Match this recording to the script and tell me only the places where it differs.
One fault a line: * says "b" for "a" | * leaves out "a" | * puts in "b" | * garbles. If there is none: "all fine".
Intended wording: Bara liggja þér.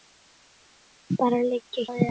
all fine